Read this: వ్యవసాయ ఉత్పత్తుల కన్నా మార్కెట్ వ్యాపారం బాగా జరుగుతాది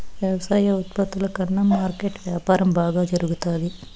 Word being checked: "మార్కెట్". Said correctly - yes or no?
yes